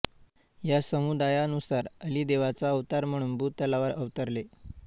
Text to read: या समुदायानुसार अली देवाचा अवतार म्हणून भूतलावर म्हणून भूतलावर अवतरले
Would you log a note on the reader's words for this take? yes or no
yes